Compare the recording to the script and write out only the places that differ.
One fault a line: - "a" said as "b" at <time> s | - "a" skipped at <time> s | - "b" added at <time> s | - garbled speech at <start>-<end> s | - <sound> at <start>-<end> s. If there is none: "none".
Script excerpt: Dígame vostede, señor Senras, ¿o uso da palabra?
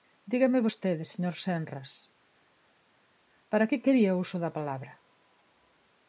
- "para que quería" added at 3.5 s